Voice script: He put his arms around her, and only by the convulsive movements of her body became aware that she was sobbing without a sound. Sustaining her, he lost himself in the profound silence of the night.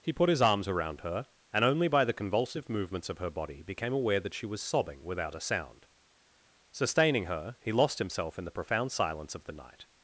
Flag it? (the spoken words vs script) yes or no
no